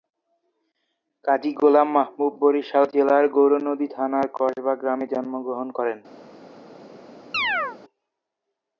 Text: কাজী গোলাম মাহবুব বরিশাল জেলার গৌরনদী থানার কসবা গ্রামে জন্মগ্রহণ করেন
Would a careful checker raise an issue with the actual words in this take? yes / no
no